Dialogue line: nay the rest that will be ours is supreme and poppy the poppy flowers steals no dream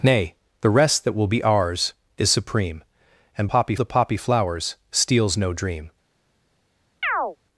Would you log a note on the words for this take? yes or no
no